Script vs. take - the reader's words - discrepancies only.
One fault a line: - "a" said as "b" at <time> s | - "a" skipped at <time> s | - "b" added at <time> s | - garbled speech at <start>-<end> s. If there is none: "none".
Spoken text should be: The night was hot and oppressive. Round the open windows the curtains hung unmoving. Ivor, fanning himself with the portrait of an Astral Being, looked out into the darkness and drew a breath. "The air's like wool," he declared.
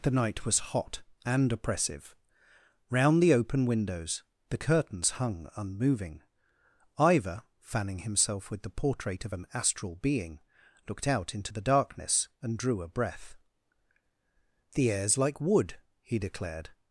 - "wool" said as "wood" at 15.4 s